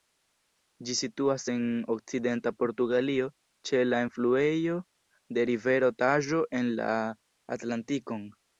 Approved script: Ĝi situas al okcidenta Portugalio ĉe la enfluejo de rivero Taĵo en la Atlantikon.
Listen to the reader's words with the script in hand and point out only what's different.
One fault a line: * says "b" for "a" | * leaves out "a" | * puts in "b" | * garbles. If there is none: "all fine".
* says "en" for "al"